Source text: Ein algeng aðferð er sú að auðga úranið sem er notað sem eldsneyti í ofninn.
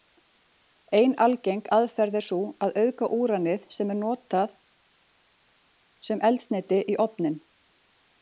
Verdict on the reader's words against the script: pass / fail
pass